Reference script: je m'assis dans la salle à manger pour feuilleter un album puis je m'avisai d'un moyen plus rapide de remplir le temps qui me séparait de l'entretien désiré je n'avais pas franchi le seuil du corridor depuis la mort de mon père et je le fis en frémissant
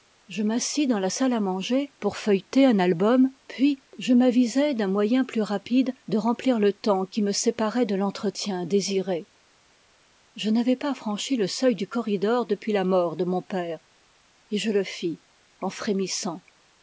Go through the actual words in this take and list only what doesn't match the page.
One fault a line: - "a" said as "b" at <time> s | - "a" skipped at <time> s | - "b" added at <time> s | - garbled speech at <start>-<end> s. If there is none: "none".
none